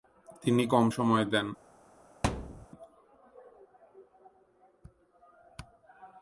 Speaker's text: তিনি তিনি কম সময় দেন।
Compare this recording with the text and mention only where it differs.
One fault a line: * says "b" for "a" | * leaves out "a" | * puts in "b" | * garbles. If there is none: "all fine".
* leaves out "তিনি"